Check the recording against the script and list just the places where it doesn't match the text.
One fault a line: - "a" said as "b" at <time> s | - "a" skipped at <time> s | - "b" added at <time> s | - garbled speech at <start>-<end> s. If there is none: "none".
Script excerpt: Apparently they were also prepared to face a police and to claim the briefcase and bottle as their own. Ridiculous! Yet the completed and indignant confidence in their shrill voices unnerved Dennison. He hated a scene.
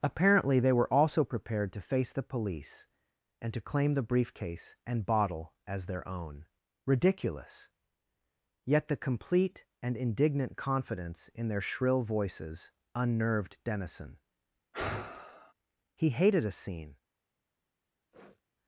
- "a" said as "the" at 2.1 s
- "completed" said as "complete" at 9.0 s